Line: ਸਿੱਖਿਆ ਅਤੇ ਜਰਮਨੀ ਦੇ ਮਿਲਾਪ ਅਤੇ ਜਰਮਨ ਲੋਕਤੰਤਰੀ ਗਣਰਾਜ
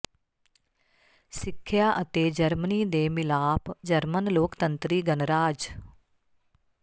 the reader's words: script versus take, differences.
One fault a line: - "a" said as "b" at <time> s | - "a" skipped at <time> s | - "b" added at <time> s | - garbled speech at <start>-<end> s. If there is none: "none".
- "ਅਤੇ" skipped at 3.7 s